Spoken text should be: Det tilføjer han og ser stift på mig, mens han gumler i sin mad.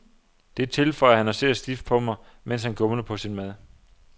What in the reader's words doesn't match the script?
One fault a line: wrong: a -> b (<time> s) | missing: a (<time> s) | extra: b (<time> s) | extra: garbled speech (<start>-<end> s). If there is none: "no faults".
wrong: i -> på (3.0 s)